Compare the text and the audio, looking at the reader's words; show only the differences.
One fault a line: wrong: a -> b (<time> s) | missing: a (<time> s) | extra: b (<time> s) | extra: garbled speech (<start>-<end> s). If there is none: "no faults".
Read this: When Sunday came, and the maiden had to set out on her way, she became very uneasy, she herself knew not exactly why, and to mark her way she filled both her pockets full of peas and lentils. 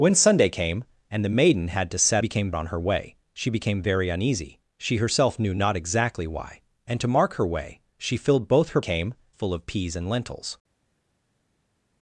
wrong: out -> became (2.2 s)
wrong: pockets -> came (8.8 s)